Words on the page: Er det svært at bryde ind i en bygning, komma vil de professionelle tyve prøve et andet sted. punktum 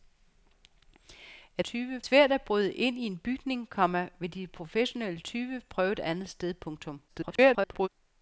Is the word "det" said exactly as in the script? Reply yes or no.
no